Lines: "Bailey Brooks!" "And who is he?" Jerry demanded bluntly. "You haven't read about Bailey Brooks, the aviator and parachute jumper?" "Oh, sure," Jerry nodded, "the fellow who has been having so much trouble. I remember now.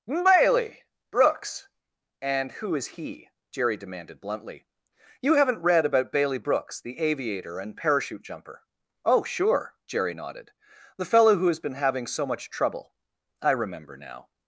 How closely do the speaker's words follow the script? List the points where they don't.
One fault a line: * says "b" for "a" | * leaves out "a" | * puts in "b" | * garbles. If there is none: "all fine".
all fine